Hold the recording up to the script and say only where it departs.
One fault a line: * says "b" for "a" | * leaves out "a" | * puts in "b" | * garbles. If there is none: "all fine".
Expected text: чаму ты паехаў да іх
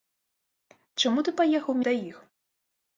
all fine